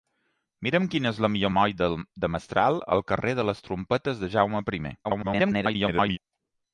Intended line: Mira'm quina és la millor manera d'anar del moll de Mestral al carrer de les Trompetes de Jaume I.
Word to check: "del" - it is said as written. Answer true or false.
false